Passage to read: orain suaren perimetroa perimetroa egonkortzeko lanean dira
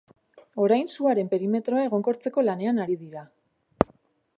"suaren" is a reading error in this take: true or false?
false